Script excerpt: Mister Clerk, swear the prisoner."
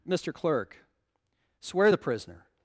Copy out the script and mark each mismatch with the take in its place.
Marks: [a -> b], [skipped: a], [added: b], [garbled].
Mister Clerk, swear the prisoner."